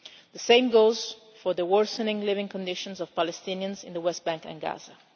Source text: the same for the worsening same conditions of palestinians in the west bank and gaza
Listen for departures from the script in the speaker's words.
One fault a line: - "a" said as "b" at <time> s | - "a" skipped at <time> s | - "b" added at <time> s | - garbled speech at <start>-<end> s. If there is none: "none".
- "goes" added at 0.7 s
- "same" said as "living" at 2.2 s